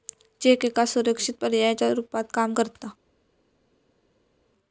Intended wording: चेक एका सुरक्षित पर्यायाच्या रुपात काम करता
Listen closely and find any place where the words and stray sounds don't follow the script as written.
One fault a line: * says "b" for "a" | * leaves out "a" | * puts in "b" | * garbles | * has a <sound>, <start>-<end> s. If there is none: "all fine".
all fine